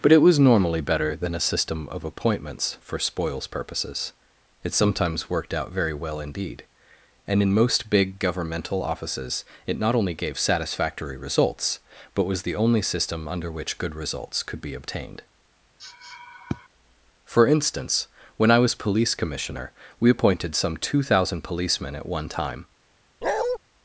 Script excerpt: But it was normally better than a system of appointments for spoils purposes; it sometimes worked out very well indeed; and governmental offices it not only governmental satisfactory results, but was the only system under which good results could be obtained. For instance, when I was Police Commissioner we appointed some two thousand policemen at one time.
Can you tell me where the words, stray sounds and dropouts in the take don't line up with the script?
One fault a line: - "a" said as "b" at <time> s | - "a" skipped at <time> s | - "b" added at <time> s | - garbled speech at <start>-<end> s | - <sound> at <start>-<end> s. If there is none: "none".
- "in most big" added at 7.4 s
- "governmental" said as "gave" at 10.2 s
- sniff at 15.8-16.7 s
- bark at 23.2-23.6 s